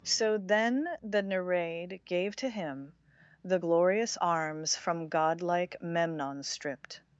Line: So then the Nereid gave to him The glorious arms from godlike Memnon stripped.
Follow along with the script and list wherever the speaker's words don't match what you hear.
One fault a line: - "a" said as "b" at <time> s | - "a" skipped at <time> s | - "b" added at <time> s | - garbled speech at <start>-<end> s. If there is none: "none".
none